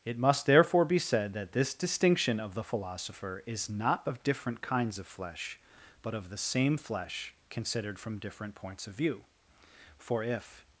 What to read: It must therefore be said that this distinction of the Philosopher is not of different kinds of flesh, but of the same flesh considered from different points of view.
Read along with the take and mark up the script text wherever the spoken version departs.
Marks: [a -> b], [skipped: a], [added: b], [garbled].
It must therefore be said that this distinction of the Philosopher is not of different kinds of flesh, but of the same flesh considered from different points of view. [added: For if]